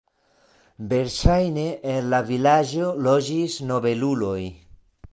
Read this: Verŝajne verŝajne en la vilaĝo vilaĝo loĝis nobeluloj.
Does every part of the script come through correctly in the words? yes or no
no